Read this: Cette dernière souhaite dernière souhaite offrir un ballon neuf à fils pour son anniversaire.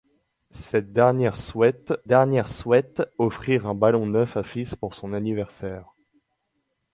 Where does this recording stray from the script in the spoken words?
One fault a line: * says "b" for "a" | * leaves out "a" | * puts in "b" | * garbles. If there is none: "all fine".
all fine